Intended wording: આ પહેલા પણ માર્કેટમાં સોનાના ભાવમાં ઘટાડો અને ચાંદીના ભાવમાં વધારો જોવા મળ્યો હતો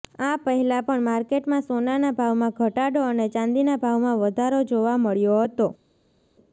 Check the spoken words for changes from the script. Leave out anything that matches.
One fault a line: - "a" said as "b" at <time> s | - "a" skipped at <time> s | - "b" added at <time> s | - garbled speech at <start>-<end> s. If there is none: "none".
none